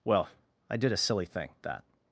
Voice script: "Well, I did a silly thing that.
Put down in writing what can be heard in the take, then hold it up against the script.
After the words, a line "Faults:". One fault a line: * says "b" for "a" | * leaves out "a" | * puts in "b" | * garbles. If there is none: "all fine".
"Well, I did a silly thing that.
Faults:
all fine